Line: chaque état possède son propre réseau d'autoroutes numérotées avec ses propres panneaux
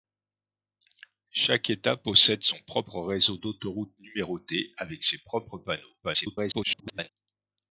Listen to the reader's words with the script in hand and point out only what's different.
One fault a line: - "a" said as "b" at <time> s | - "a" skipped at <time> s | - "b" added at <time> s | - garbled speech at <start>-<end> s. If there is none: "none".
- garbled speech at 6.0-7.1 s